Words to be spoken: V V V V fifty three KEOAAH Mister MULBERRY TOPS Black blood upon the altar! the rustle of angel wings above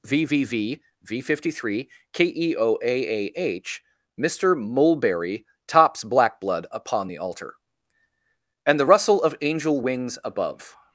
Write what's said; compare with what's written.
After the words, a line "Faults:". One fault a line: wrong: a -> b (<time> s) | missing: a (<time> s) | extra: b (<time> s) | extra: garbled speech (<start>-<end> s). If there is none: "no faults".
V V V V fifty three KEOAAH Mister MULBERRY TOPS Black blood upon the altar! and the rustle of angel wings above
Faults:
extra: and (8.6 s)